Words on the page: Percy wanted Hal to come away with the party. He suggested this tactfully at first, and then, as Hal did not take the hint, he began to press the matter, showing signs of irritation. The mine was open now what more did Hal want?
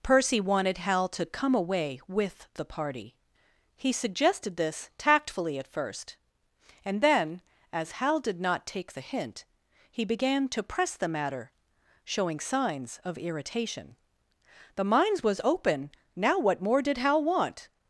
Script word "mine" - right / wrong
wrong